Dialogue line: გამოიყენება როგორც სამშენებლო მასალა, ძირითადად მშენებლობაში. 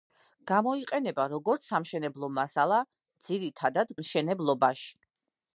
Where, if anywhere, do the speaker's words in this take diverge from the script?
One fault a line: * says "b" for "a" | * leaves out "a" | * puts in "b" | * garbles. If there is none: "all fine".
all fine